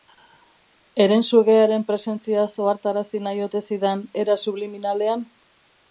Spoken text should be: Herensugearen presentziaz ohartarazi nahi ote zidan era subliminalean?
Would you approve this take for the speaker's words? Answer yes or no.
yes